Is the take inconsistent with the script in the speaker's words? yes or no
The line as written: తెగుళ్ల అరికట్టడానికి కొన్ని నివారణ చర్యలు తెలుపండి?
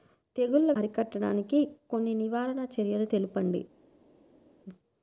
no